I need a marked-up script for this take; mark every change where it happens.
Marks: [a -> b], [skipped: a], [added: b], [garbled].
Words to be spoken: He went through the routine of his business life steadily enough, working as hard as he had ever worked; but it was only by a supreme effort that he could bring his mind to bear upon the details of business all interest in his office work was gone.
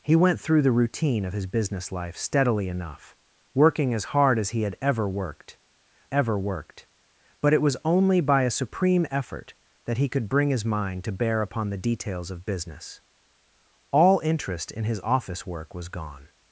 He went through the routine of his business life steadily enough, working as hard as he had ever worked; [added: ever worked] but it was only by a supreme effort that he could bring his mind to bear upon the details of business all interest in his office work was gone.